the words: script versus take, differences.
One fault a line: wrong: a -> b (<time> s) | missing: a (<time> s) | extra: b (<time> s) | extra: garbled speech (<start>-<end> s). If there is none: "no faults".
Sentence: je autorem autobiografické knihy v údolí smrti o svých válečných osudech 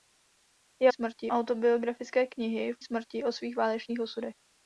wrong: autorem -> smrti (0.9 s)
missing: údolí (2.8 s)